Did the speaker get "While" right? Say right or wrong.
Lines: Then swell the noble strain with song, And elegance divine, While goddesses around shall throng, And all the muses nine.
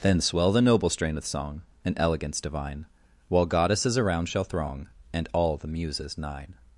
right